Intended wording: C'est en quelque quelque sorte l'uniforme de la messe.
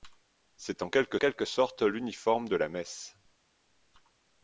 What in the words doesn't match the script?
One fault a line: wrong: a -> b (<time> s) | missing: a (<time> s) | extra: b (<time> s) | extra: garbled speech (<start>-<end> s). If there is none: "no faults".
no faults